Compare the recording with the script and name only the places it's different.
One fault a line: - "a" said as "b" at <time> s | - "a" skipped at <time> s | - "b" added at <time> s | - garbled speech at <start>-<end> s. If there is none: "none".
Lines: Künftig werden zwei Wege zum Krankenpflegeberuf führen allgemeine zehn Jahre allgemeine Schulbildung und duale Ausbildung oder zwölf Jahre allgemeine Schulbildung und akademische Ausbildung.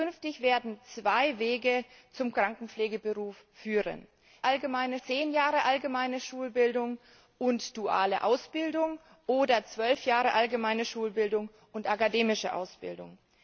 none